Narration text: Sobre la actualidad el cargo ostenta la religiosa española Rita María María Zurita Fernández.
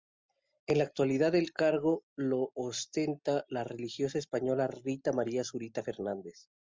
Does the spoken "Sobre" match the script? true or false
false